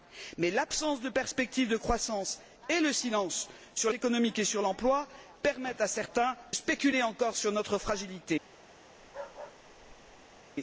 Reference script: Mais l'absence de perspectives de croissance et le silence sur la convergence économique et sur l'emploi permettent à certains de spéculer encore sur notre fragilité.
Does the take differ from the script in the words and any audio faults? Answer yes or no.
yes